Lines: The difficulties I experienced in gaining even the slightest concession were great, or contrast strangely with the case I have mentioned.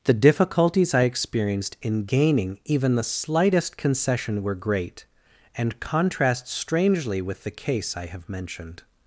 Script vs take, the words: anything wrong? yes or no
yes